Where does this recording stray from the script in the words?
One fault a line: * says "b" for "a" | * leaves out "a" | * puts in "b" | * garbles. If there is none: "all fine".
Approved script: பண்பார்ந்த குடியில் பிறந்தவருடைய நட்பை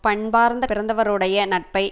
* leaves out "குடியில்"